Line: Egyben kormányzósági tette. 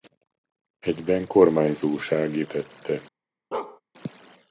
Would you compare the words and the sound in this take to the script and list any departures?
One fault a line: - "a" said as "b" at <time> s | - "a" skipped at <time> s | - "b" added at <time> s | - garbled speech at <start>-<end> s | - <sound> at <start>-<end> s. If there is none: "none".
- bark at 3.5-3.8 s